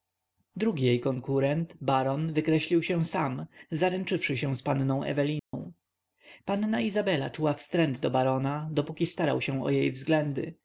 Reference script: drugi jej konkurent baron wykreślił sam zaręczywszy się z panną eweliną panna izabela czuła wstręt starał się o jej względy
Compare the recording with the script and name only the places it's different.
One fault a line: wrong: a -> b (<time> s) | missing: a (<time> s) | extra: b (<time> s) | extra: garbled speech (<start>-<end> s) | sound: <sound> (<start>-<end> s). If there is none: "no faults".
extra: się (2.8 s)
sound: dropout (5.4-5.5 s)
extra: do barona dopóki (8.0 s)